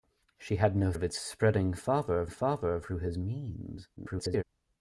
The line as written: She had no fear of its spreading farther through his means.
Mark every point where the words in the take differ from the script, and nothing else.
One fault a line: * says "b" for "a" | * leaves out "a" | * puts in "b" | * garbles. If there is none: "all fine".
* leaves out "fear"
* puts in "farther"
* garbles